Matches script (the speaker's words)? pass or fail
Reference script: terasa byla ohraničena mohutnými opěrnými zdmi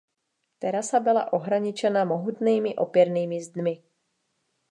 pass